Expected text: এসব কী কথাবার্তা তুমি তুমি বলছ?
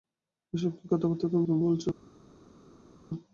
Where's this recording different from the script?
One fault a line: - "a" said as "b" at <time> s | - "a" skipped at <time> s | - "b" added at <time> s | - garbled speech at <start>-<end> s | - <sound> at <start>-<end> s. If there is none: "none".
none